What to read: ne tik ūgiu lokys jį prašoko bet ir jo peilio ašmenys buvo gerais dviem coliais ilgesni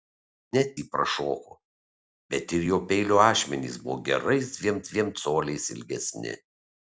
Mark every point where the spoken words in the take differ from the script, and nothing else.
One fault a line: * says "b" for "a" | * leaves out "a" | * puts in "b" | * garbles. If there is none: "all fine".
* leaves out "tik ūgiu lokys"
* puts in "dviem"